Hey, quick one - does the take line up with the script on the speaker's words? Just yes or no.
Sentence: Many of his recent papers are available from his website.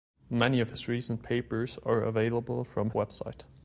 no